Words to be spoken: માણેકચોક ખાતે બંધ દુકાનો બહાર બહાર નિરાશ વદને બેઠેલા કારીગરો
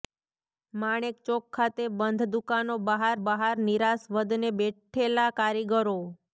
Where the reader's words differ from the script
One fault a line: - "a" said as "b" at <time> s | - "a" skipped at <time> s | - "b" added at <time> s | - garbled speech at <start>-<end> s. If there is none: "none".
none